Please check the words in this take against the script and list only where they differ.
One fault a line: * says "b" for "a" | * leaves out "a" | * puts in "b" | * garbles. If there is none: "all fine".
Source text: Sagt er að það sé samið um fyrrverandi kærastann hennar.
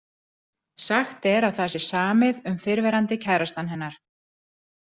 all fine